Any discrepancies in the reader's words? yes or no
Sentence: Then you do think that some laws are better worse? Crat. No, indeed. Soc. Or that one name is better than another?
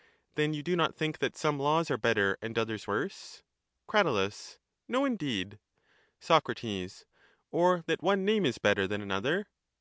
yes